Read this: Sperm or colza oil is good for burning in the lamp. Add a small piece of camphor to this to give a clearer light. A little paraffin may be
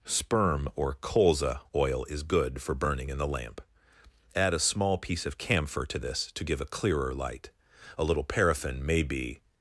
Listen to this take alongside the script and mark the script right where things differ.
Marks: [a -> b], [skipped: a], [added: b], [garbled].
Sperm or colza oil is good for burning in the lamp. Add a small piece of camphor to this to give a clearer light. A little paraffin may be